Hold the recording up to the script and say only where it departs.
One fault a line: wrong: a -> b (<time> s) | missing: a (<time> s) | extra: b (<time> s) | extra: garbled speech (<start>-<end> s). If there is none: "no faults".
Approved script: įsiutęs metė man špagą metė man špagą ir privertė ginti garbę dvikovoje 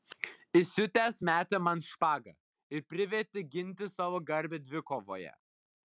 missing: metė man špagą (2.4 s)
extra: savo (4.0 s)